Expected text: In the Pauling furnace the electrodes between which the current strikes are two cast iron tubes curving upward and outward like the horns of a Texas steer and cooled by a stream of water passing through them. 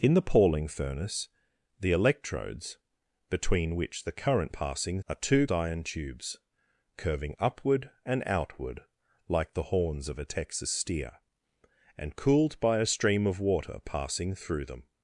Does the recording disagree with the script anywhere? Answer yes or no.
yes